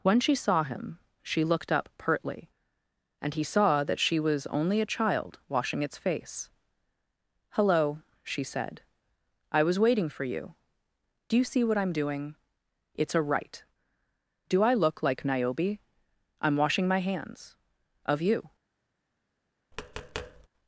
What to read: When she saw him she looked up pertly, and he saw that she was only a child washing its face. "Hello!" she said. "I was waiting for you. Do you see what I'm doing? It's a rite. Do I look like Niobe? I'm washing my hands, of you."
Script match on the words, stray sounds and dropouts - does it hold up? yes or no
no